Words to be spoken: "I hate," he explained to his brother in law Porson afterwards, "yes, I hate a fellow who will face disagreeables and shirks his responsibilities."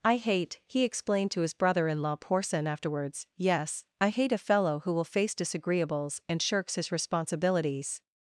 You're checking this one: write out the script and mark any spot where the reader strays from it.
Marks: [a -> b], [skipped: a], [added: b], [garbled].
"I hate," he explained to his brother in law Porson afterwards, "yes, I hate a fellow who will face disagreeables and shirks his responsibilities."